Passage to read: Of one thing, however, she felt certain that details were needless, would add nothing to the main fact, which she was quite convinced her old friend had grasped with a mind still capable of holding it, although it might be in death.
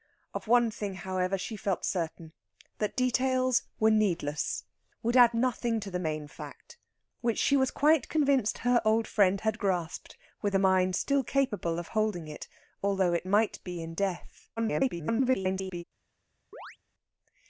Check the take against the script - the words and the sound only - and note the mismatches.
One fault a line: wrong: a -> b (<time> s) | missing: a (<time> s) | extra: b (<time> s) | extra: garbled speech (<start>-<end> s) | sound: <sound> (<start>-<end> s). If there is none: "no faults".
extra: garbled speech (14.6-15.8 s)
sound: chirp (16.5-16.8 s)